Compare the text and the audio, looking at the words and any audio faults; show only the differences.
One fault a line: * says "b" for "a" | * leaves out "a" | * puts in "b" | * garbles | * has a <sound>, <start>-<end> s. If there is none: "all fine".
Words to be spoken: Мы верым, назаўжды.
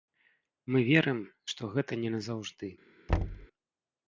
* puts in "што гэта не"
* has a thud, 3.1-3.5 s